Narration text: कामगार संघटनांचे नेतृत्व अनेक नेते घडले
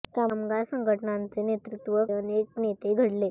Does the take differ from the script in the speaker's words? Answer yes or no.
no